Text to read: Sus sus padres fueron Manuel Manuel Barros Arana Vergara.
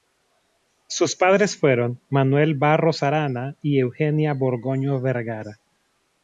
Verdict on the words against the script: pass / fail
fail